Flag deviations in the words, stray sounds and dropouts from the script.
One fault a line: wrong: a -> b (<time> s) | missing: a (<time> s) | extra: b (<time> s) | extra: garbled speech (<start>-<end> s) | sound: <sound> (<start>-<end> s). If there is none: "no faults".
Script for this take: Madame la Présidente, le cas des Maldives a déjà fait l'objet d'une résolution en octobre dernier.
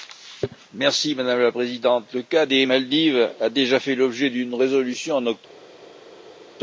no faults